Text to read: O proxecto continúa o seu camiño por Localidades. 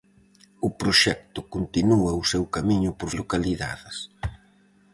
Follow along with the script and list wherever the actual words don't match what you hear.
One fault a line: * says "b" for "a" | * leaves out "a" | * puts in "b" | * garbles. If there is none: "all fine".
all fine